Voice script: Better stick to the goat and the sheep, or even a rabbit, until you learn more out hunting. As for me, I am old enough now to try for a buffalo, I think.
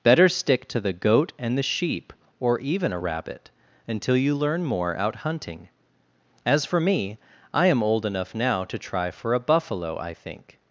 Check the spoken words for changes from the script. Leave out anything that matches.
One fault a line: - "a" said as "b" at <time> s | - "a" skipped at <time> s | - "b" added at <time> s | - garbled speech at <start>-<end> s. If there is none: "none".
none